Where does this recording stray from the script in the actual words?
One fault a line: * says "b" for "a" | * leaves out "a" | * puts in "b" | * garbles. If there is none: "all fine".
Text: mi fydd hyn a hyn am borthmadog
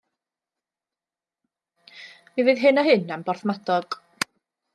all fine